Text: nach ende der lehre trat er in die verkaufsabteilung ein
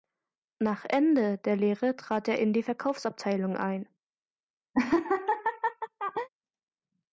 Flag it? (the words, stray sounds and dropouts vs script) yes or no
yes